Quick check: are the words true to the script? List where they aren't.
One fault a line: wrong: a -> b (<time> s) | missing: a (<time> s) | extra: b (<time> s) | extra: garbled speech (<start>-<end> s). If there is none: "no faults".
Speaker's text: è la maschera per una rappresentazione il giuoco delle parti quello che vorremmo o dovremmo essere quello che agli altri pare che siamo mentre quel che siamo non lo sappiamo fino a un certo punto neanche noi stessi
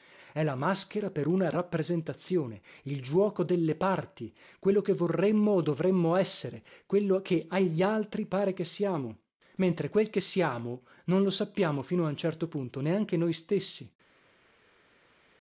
no faults